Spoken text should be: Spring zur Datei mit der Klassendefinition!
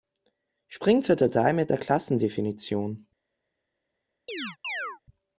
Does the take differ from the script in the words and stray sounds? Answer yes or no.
yes